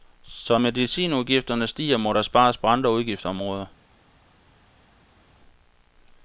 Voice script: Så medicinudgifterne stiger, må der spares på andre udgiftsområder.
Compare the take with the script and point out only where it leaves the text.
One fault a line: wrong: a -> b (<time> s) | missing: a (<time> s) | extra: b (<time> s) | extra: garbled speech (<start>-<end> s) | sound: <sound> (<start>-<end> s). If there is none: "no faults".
no faults